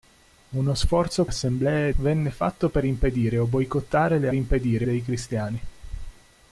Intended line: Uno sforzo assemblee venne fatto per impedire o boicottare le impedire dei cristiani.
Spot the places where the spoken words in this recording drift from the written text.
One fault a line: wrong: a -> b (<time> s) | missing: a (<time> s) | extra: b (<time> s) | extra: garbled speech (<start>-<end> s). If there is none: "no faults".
no faults